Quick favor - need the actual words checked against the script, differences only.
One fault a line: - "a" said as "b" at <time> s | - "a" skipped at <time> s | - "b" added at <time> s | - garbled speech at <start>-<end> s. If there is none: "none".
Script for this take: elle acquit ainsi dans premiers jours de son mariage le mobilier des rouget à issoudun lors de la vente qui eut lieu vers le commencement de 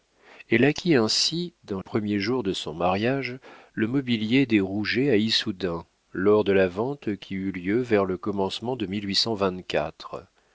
none